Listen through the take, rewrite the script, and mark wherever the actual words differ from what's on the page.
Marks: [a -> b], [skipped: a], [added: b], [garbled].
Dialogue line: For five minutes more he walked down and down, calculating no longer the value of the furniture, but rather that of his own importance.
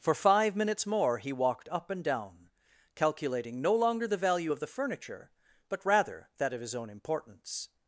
For five minutes more he walked [down -> up] and down, calculating no longer the value of the furniture, but rather that of his own importance.